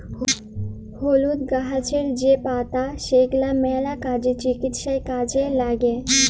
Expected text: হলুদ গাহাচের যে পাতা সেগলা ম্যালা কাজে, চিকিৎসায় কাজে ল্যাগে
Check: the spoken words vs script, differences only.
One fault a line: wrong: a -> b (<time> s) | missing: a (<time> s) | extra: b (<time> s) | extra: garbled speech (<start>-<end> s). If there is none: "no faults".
no faults